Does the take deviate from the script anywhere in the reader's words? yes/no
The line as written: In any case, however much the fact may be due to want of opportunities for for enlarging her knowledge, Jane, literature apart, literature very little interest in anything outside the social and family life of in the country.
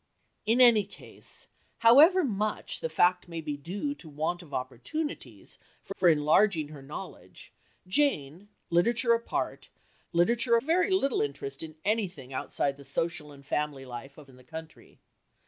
no